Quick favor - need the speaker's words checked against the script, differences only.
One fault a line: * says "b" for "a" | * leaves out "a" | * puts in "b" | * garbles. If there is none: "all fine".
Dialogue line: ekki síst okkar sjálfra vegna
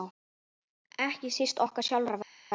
all fine